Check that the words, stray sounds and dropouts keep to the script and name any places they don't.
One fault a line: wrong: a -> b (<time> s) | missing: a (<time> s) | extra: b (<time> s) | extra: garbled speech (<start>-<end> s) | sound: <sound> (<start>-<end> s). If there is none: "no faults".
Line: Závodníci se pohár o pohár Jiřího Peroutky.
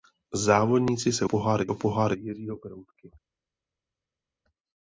no faults